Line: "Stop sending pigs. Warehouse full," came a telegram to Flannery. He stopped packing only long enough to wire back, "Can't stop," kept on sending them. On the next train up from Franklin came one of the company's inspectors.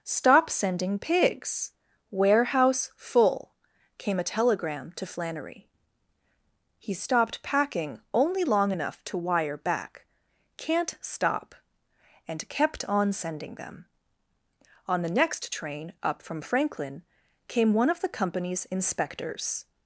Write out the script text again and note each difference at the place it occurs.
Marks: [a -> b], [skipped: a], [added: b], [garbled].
"Stop sending pigs. Warehouse full," came a telegram to Flannery. He stopped packing only long enough to wire back, "Can't stop," [added: and] kept on sending them. On the next train up from Franklin came one of the company's inspectors.